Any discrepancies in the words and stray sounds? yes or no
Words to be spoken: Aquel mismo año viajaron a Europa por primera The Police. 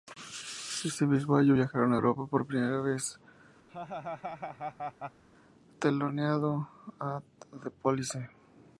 yes